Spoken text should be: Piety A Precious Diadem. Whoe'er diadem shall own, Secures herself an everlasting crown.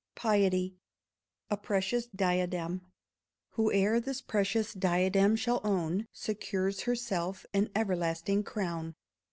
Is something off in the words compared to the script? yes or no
yes